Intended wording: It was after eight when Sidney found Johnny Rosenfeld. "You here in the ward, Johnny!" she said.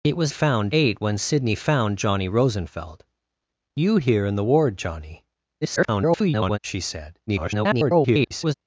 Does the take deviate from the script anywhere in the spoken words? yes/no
yes